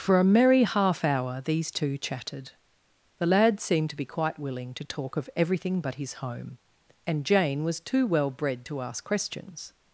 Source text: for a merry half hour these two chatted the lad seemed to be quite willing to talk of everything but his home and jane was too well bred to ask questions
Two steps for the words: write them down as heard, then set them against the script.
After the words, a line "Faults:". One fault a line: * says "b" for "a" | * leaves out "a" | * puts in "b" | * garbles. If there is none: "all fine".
for a merry half hour these two chatted the lad seemed to be quite willing to talk of everything but his home and jane was too well bred to ask questions
Faults:
all fine